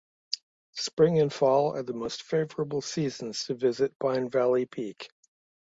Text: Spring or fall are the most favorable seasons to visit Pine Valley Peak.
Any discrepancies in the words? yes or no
yes